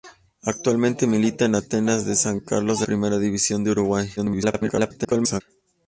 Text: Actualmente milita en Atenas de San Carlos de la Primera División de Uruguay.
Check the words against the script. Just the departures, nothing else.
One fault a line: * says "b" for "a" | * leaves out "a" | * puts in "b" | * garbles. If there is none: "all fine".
* leaves out "la"
* garbles